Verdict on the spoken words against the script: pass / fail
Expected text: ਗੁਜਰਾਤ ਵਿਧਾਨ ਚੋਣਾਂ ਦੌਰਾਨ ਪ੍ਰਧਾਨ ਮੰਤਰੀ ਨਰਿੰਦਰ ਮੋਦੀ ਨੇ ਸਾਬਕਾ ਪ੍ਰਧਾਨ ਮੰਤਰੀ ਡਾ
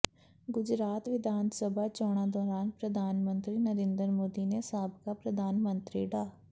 fail